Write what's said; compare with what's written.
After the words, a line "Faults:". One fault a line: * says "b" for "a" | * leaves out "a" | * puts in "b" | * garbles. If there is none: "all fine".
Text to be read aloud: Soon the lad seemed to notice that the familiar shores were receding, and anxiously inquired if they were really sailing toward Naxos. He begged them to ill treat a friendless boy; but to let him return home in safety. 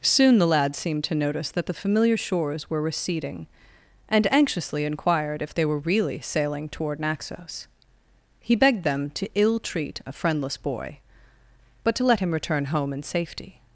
Soon the lad seemed to notice that the familiar shores were receding, and anxiously inquired if they were really sailing toward Naxos. He begged them to ill treat a friendless boy; but to let him return home in safety.
Faults:
all fine